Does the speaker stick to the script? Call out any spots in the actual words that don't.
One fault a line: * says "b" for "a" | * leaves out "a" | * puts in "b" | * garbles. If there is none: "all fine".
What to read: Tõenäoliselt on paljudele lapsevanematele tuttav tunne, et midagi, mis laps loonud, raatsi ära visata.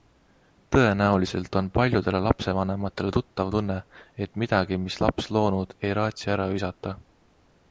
* puts in "ei"